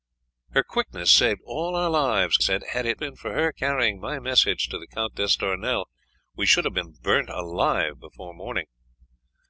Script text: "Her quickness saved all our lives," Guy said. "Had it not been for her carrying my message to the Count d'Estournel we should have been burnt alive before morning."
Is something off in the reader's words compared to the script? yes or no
yes